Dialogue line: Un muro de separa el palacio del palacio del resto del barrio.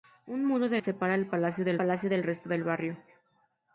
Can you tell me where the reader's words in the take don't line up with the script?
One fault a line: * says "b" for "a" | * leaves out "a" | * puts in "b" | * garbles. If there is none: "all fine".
all fine